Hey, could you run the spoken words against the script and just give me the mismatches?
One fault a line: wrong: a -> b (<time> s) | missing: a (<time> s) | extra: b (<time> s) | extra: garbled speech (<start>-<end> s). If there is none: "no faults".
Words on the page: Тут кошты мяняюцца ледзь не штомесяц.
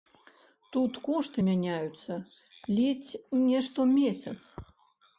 no faults